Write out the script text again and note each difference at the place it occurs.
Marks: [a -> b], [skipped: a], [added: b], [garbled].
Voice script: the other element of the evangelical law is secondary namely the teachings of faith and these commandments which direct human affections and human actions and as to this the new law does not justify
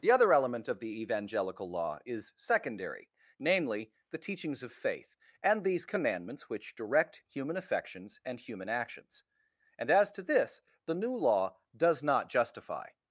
the other element of the evangelical law is secondary namely the teachings of faith and these commandments which direct human affections and human actions and as to this the new law does not justify